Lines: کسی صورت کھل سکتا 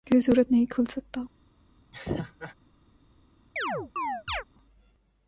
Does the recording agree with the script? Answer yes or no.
no